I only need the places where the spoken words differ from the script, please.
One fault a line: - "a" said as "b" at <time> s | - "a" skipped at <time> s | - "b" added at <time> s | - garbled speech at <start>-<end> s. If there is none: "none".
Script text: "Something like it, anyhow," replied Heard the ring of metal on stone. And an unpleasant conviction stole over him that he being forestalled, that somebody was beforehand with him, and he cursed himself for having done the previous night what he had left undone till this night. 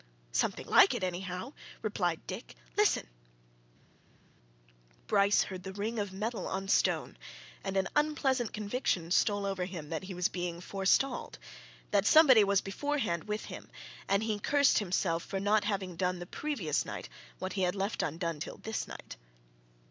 - "Dick Listen Bryce" added at 2.2 s
- "was" added at 10.1 s
- "not" added at 15.4 s